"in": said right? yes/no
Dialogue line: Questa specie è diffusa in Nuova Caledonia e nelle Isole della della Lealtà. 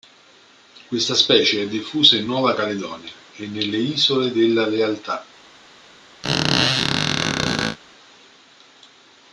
yes